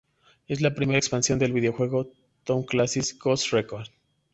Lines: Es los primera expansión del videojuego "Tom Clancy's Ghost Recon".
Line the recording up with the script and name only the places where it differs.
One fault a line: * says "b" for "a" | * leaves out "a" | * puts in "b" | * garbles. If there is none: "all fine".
* says "la" for "los"